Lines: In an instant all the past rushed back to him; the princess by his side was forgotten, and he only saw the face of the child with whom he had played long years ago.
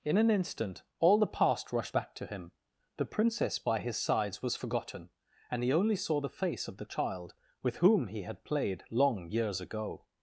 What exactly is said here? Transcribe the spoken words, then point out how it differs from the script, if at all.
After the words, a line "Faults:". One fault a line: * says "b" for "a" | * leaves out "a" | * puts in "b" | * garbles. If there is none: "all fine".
In an instant all the past rushed back to him; the princess by his sides was forgotten, and he only saw the face of the child with whom he had played long years ago.
Faults:
* says "sides" for "side"